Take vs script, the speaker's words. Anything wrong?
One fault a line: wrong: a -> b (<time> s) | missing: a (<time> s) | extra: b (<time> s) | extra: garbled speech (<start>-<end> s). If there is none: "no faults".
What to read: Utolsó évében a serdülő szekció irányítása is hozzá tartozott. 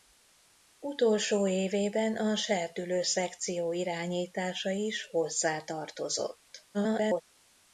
extra: garbled speech (6.7-7.2 s)